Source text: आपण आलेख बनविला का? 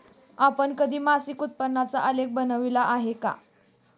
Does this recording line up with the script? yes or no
no